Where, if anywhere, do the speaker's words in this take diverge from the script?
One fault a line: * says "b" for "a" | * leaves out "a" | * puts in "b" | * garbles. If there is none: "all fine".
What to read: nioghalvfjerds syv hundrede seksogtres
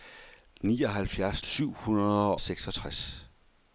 all fine